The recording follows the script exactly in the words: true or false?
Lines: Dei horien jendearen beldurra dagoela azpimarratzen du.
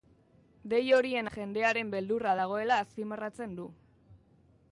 true